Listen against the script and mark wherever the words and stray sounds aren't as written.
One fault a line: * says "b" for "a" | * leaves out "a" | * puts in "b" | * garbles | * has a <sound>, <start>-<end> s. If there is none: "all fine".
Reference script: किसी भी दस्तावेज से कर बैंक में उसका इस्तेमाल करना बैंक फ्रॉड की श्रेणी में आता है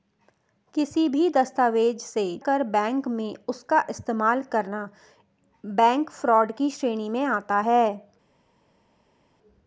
all fine